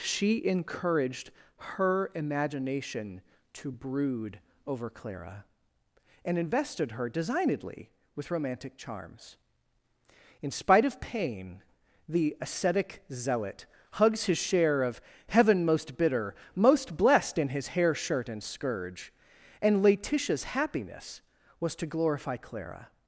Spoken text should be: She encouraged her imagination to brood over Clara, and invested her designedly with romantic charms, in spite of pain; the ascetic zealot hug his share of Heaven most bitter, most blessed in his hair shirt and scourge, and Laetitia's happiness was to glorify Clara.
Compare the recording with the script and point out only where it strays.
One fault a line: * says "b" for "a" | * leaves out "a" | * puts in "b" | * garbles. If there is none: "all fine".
* says "hugs" for "hug"